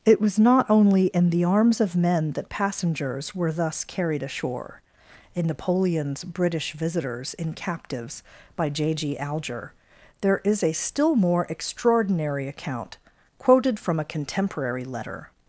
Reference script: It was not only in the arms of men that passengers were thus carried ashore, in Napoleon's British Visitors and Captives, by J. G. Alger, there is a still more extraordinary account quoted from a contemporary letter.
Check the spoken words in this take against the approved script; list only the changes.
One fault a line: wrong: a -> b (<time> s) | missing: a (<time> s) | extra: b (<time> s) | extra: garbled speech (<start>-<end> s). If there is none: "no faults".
wrong: and -> in (7.4 s)